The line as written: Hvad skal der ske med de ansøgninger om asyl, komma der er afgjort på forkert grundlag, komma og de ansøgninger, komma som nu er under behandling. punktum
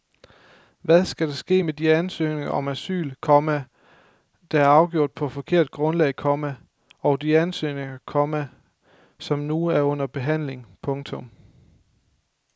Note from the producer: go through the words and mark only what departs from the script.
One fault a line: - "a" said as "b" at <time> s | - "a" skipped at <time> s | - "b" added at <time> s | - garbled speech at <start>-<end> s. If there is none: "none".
none